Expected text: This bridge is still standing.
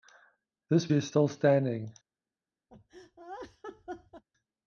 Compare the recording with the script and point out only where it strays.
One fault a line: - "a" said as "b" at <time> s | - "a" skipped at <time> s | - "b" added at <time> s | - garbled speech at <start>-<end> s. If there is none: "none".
- "bridge" skipped at 0.9 s